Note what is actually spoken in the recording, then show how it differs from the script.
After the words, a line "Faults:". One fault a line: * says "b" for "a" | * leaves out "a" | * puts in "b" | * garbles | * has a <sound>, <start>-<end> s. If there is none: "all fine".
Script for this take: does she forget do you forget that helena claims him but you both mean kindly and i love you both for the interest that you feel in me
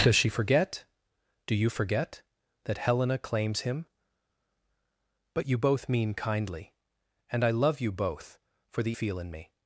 does she forget do you forget that helena claims him but you both mean kindly and i love you both for the feel in me
Faults:
* leaves out "interest that you"